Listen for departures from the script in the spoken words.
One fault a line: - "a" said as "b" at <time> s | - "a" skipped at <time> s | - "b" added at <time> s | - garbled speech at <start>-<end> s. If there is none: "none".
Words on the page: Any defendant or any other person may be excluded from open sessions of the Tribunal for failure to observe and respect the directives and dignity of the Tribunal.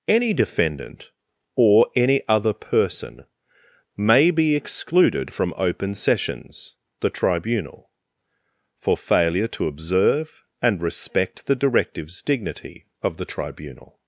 - "of" skipped at 6.7 s
- "and" skipped at 12.2 s